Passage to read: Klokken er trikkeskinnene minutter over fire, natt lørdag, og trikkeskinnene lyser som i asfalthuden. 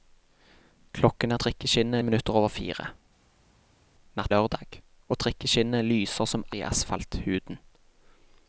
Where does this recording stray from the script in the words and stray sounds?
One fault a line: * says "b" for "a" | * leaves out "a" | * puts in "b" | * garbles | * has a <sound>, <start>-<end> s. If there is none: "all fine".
all fine